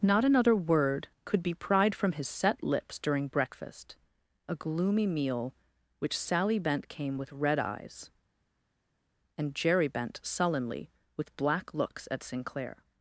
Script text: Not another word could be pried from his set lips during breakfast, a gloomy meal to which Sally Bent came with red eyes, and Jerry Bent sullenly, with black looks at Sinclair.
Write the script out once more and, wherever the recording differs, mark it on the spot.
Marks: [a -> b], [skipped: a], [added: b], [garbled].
Not another word could be pried from his set lips during breakfast, a gloomy meal [skipped: to] which Sally Bent came with red eyes, and Jerry Bent sullenly, with black looks at Sinclair.